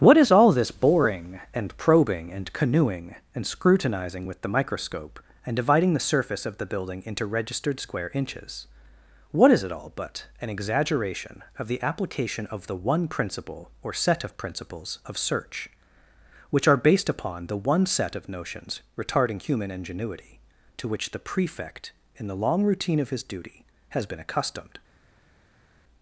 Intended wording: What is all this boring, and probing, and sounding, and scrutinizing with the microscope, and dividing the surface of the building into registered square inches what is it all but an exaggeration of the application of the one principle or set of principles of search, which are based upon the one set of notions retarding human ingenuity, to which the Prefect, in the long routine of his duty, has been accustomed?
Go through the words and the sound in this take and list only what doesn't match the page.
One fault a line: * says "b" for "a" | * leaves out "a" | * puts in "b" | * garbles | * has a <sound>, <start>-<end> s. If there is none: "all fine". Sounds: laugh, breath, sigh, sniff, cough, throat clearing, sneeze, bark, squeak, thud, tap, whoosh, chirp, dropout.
* says "canoeing" for "sounding"